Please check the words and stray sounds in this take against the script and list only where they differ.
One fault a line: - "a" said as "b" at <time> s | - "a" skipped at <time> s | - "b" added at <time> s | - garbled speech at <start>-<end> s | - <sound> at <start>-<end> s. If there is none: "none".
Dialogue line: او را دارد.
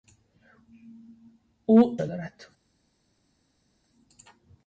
none